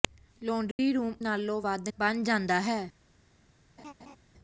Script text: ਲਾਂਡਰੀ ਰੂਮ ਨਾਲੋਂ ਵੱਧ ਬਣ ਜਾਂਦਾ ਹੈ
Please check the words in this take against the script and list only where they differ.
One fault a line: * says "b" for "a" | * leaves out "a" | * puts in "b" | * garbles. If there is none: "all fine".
all fine